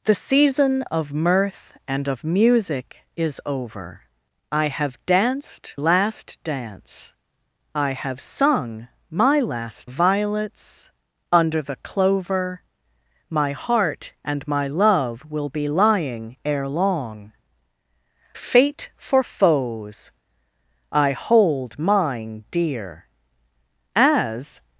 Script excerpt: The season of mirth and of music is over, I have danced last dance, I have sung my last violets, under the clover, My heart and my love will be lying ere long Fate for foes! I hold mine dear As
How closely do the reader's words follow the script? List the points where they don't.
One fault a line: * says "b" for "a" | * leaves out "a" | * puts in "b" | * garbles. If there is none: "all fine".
all fine